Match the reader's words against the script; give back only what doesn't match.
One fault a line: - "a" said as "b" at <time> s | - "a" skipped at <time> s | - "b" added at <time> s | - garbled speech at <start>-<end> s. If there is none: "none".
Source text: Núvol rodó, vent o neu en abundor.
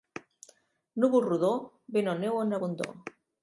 none